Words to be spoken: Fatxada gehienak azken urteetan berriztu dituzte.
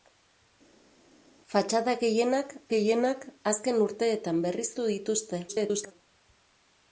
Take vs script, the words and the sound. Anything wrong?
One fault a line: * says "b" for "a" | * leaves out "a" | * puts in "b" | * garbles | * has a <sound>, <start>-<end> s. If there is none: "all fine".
* puts in "gehienak"
* garbles